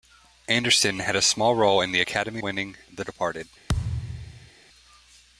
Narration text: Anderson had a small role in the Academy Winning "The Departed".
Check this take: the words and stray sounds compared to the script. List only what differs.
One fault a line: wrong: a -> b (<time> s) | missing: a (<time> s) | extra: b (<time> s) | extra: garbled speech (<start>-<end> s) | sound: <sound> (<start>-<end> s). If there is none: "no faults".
sound: thud (3.7-4.5 s)